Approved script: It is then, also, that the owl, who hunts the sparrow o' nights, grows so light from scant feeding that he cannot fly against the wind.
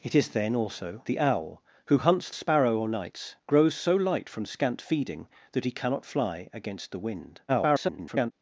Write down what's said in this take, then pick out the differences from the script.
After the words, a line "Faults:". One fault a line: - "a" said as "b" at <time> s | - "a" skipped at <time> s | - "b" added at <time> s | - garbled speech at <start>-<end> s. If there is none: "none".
It is then, also, the owl, who hunts sparrow o' nights, grows so light from scant feeding that he cannot fly against the wind. [garbled]
Faults:
- "that" skipped at 1.0 s
- "the" skipped at 2.3 s
- garbled speech at 7.5-8.3 s